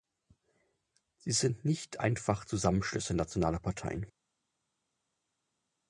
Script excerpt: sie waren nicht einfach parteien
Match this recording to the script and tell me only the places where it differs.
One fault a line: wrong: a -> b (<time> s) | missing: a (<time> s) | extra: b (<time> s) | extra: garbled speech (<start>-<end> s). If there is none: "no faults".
wrong: waren -> sind (1.3 s)
extra: zusammenschlüsse nationaler (2.4 s)